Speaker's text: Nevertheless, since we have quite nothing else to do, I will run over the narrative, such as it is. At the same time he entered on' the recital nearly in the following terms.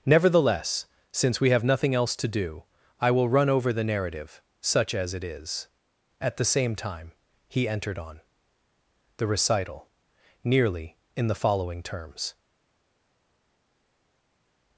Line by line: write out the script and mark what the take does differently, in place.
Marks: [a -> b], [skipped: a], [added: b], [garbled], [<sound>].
Nevertheless, since we have [skipped: quite] nothing else to do, I will run over the narrative, such as it is. At the same time he entered on' the recital nearly in the following terms.